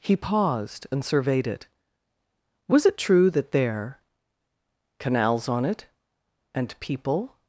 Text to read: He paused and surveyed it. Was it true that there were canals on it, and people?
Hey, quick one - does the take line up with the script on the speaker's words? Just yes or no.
no